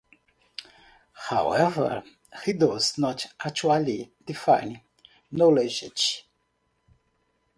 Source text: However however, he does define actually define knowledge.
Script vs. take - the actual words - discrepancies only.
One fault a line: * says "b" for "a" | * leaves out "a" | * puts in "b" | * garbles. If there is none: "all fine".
* leaves out "however"
* says "not" for "define"